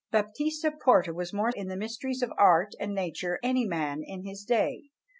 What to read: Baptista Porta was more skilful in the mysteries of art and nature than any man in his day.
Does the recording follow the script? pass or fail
fail